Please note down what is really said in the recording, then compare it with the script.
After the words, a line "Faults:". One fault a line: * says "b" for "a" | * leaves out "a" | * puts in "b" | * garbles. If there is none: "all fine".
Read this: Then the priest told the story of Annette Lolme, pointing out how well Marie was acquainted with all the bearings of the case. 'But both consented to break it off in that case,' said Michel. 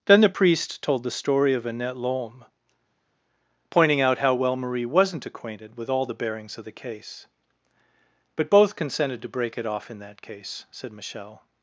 Then the priest told the story of Annette Lolme, pointing out how well Marie wasn't acquainted with all the bearings of the case. 'But both consented to break it off in that case,' said Michel.
Faults:
* says "wasn't" for "was"